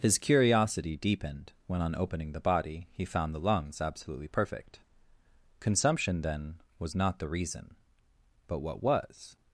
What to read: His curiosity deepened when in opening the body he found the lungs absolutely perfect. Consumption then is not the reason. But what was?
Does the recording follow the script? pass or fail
fail